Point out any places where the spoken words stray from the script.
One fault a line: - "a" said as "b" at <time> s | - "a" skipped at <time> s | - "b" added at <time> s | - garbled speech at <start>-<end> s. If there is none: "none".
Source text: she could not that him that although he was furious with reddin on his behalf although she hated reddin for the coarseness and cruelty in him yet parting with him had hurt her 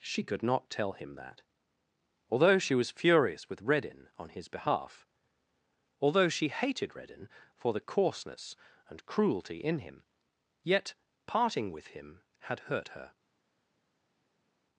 - "that" said as "tell" at 0.7 s
- "he" said as "she" at 2.6 s